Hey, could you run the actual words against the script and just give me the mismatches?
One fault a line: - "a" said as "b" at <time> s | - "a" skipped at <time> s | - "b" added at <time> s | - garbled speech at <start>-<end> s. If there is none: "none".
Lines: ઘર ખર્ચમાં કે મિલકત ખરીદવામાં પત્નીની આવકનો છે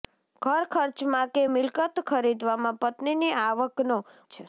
none